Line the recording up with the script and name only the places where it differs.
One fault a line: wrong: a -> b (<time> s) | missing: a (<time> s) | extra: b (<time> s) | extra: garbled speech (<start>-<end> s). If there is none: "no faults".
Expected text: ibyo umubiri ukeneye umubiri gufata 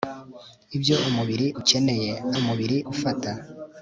no faults